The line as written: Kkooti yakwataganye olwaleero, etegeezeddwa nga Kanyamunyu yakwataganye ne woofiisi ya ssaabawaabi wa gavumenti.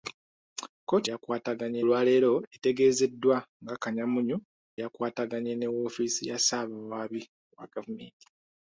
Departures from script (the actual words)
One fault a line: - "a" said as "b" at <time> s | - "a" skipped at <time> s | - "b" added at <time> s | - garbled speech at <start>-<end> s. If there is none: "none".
none